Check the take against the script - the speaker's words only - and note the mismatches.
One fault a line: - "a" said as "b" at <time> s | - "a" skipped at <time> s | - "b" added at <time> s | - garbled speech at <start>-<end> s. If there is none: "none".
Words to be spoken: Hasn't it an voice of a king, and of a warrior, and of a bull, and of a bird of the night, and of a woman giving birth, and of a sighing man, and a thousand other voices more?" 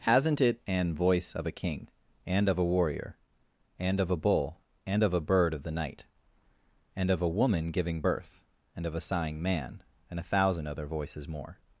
none